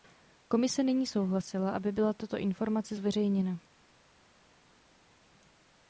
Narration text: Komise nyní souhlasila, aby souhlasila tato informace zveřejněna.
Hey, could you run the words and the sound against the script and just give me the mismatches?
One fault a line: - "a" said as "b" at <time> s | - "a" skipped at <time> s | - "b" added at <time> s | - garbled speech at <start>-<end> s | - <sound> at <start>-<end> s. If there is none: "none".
- "souhlasila" said as "byla" at 1.9 s